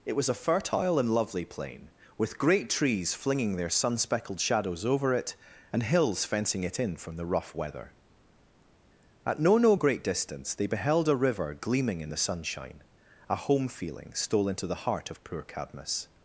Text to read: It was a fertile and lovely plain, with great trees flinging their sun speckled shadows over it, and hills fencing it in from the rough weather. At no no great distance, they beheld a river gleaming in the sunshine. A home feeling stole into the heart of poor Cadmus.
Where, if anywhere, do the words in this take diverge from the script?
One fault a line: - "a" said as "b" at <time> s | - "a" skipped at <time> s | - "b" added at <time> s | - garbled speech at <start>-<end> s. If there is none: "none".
none